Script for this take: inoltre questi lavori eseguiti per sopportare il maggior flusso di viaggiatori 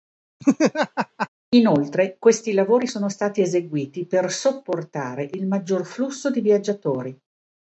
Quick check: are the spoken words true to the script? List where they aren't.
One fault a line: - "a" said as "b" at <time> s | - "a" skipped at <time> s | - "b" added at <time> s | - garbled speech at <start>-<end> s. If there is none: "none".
- "sono stati" added at 2.9 s